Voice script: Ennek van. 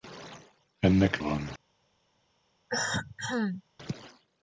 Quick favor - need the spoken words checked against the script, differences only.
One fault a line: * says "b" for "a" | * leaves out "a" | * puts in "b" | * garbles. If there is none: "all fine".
all fine